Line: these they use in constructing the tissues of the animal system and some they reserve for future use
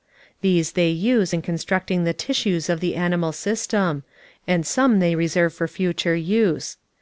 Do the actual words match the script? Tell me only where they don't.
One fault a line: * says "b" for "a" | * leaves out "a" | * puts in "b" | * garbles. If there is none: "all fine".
all fine